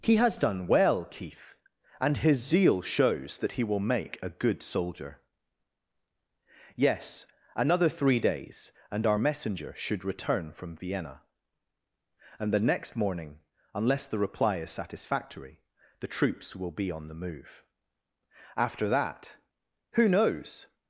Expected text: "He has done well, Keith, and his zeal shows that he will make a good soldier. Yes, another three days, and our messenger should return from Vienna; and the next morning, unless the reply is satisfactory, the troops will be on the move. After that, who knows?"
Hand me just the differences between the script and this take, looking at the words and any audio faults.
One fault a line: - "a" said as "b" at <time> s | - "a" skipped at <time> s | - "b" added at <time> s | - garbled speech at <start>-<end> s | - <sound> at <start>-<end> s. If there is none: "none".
none